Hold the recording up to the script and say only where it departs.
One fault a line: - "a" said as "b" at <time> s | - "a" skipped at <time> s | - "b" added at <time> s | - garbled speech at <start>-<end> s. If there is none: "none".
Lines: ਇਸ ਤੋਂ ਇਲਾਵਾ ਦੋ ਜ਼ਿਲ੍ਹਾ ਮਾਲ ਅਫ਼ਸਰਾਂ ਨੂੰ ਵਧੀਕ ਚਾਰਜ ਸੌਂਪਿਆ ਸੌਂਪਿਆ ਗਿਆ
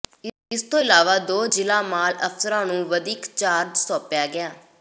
- "ਸੌਂਪਿਆ" skipped at 4.3 s